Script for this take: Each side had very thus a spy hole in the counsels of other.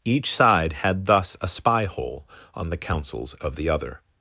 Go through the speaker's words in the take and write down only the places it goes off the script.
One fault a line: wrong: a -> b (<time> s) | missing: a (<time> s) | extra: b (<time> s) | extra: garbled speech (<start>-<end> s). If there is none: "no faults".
missing: very (1.1 s)
wrong: in -> on (2.5 s)
extra: the (3.5 s)